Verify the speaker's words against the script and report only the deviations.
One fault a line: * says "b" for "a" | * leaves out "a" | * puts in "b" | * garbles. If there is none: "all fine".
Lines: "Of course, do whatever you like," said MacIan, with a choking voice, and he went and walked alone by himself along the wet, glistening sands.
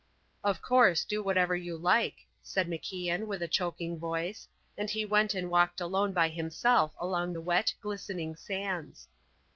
all fine